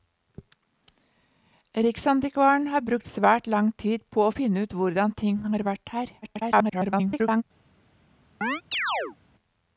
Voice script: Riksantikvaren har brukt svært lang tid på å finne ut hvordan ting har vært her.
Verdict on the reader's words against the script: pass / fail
fail